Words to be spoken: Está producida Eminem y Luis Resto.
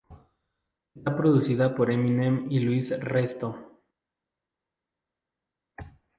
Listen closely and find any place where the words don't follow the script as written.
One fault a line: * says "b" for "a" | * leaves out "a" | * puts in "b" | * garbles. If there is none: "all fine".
* puts in "por"